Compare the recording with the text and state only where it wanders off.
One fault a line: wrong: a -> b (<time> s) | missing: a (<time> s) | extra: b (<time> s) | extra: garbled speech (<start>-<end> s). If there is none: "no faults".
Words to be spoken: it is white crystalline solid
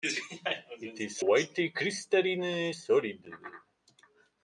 no faults